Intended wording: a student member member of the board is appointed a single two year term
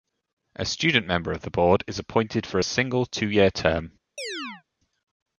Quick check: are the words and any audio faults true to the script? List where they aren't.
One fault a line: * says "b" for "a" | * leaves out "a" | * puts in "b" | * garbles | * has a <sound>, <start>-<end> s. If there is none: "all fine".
* leaves out "member"
* puts in "for"
* has a chirp, 4.2-4.6 s